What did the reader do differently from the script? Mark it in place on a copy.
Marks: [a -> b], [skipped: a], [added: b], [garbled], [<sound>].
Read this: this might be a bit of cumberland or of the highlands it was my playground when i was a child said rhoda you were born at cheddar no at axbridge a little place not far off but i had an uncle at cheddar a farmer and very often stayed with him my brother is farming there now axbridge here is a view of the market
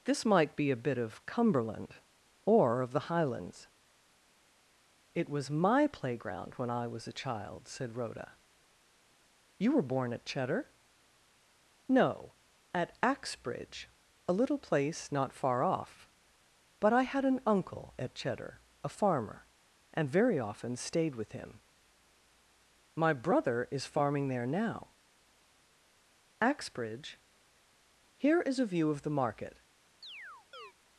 this might be a bit of cumberland or of the highlands it was my playground when i was a child said rhoda you were born at cheddar no at axbridge a little place not far off but i had an uncle at cheddar a farmer and very often stayed with him my brother is farming there now axbridge here is a view of the market [chirp]